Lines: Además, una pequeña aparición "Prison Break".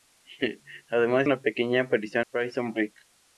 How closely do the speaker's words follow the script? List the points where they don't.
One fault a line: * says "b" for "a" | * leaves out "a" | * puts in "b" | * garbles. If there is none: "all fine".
all fine